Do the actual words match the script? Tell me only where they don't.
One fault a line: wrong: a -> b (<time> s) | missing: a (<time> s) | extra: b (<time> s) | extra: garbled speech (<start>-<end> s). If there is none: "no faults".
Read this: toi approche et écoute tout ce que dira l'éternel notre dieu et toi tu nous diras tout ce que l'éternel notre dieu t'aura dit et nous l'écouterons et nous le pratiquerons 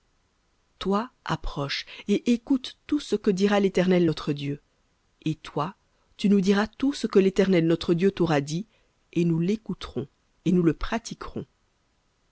no faults